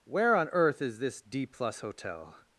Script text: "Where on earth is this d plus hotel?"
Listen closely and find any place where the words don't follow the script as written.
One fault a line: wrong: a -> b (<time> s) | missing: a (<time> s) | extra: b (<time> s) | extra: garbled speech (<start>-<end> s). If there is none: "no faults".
no faults